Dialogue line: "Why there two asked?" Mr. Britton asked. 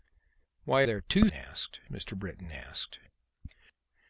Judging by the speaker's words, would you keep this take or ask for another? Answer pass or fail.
pass